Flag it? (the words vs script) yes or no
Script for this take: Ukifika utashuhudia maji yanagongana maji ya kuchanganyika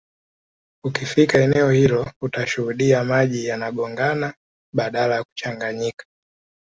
yes